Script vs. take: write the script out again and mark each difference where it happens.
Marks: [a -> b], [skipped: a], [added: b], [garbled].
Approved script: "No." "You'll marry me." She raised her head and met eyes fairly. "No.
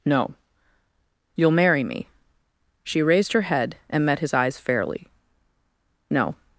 "No." "You'll marry me." She raised her head and met [added: his] eyes fairly. "No.